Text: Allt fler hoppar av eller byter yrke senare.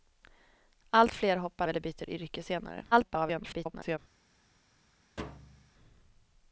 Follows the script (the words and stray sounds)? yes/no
no